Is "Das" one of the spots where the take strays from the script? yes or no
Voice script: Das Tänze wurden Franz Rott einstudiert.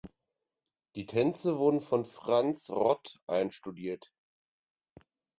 yes